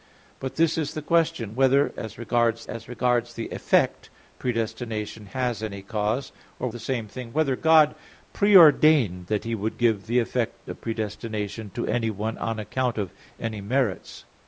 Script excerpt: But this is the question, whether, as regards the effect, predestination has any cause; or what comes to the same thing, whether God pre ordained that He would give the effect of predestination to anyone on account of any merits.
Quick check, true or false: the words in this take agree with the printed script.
false